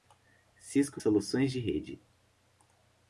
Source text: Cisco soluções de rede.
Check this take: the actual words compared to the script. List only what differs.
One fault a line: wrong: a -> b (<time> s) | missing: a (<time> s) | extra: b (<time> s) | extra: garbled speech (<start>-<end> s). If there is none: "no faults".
no faults